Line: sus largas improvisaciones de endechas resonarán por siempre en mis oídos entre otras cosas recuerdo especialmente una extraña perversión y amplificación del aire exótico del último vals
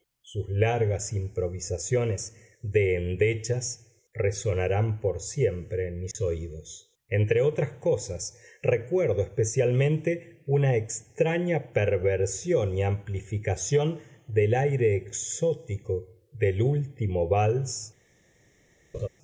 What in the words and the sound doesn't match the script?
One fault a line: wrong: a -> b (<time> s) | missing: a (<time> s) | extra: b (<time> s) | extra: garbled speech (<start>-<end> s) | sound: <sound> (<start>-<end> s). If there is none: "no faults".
sound: dropout (6.1-6.2 s)
sound: laugh (18.9-19.1 s)